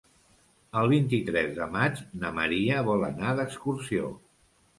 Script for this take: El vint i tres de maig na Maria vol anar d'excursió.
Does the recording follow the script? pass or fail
pass